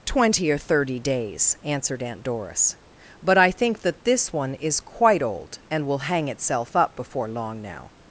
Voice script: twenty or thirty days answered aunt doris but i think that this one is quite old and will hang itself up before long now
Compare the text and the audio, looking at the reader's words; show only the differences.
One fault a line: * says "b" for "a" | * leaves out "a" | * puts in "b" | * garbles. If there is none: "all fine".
all fine